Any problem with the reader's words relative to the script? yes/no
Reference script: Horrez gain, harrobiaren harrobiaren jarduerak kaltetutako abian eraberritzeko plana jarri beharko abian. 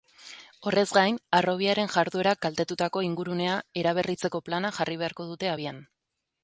yes